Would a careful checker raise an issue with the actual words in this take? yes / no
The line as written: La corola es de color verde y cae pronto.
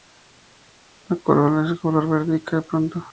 no